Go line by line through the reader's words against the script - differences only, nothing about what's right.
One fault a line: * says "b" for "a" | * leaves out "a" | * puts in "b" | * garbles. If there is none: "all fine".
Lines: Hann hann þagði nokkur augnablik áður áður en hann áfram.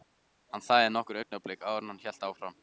* leaves out "hann"
* leaves out "áður"
* puts in "hélt"